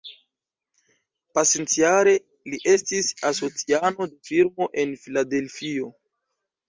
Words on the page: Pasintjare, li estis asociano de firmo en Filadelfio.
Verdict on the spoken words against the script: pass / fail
pass